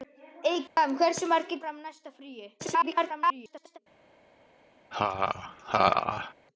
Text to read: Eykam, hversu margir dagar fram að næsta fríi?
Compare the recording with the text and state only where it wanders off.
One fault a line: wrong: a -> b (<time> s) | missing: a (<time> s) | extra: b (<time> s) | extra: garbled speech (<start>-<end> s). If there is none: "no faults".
missing: dagar (1.6 s)
extra: garbled speech (2.6-3.8 s)